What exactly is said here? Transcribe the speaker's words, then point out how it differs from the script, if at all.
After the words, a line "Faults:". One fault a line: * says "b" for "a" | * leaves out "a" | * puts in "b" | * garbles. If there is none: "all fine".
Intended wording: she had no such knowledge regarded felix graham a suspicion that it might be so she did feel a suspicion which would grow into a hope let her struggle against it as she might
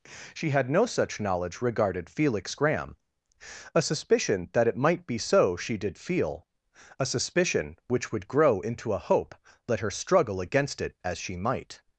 she had no such knowledge regarded felix graham a suspicion that it might be so she did feel a suspicion which would grow into a hope let her struggle against it as she might
Faults:
all fine